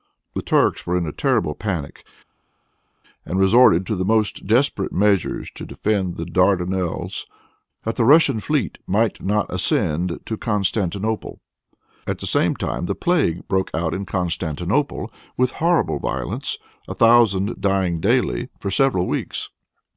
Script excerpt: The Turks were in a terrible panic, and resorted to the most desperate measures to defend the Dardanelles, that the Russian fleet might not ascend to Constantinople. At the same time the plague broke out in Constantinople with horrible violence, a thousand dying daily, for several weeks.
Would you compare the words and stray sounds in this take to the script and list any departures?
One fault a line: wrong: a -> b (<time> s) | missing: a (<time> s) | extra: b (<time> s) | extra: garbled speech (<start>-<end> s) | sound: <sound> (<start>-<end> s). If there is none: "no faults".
no faults